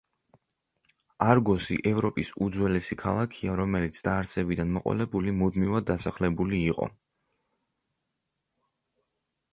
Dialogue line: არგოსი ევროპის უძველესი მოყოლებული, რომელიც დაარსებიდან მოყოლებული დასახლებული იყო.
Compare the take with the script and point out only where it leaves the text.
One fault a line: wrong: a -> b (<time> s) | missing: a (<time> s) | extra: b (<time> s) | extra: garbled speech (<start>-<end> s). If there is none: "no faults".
wrong: მოყოლებული -> ქალაქია (3.0 s)
extra: მუდმივად (5.4 s)